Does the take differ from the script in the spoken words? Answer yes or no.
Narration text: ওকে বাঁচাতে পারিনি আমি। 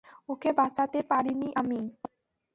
no